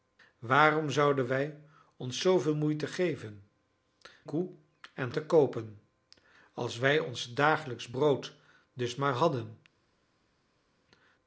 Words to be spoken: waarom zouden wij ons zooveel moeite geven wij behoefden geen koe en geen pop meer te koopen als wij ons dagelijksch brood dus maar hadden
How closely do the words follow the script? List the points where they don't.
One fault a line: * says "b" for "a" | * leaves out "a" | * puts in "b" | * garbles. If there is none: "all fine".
* leaves out "wij behoefden geen"
* leaves out "geen pop meer"